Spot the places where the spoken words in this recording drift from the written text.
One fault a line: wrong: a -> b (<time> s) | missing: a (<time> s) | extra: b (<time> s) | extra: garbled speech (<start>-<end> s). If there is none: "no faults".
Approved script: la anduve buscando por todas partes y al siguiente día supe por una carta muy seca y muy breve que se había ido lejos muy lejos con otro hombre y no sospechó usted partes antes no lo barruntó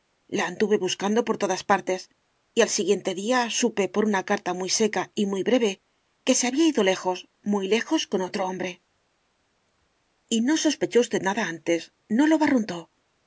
wrong: partes -> nada (11.2 s)